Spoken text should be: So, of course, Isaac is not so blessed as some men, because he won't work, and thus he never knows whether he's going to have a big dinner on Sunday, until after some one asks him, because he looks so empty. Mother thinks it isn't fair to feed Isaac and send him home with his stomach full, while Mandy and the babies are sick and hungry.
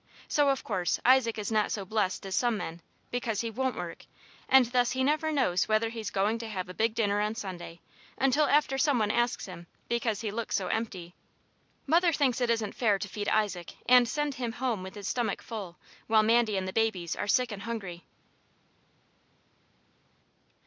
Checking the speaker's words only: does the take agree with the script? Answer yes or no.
yes